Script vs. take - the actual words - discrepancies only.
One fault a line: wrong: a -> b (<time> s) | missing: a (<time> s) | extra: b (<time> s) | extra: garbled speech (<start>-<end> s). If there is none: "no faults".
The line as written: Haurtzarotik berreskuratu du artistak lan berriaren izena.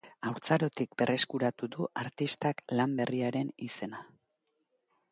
no faults